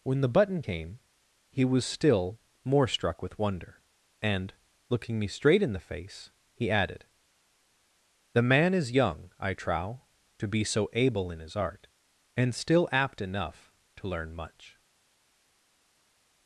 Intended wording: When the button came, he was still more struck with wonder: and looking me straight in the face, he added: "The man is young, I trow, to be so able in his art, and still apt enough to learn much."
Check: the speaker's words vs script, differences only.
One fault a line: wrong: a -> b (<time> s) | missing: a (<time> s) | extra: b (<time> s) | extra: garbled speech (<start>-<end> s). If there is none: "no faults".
no faults